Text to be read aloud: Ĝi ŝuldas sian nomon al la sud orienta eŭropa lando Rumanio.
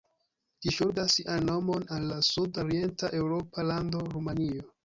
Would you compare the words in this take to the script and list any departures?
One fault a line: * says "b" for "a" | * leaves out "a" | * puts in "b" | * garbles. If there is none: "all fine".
all fine